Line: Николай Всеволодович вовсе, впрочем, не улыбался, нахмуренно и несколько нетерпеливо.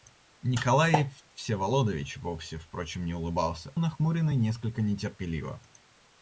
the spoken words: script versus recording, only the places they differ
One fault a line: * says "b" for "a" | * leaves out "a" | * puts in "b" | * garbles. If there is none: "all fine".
all fine